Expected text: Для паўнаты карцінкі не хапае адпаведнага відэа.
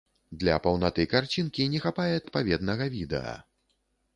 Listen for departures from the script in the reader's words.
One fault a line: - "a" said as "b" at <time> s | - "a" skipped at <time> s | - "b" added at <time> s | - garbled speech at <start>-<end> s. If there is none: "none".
none